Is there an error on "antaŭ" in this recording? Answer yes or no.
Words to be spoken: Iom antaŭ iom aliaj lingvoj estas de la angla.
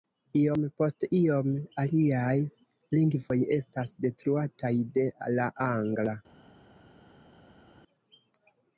yes